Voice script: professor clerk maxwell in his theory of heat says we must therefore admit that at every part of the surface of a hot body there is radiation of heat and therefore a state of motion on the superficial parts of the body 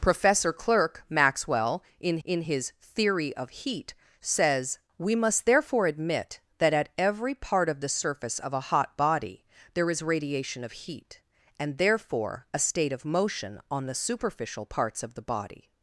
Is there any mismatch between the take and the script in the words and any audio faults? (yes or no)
yes